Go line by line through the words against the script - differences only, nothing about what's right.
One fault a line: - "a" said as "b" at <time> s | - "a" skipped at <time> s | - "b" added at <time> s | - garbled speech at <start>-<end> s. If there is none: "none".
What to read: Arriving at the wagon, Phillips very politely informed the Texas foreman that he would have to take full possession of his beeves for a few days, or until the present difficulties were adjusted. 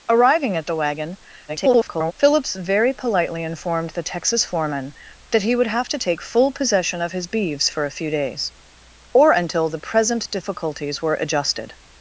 - garbled speech at 1.5-2.1 s